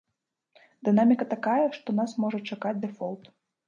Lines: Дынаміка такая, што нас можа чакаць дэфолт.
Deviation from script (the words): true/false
false